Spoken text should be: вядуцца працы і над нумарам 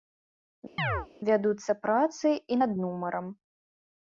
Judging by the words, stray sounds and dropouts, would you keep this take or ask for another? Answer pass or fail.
fail